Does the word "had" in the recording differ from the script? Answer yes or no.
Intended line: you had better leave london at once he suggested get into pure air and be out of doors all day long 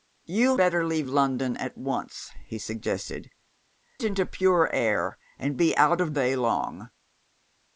yes